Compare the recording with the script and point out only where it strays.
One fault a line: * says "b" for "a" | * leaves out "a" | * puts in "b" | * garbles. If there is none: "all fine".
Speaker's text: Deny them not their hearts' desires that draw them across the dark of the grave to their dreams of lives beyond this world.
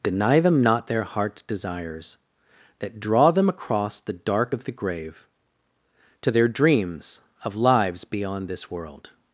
all fine